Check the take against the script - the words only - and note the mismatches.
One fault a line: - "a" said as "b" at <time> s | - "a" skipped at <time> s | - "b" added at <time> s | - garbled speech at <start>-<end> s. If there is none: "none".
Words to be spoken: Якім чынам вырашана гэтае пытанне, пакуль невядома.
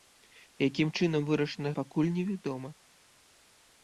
- "гэтае пытанне" skipped at 1.7 s